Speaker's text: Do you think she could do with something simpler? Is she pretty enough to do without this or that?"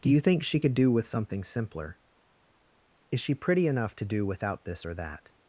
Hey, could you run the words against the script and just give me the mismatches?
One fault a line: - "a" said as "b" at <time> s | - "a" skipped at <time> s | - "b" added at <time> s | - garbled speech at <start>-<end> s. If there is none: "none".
none